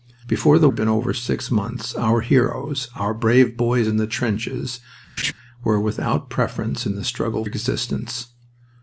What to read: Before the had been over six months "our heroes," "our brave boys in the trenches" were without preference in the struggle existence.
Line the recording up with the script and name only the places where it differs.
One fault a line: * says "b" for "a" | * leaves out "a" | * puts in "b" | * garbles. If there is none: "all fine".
all fine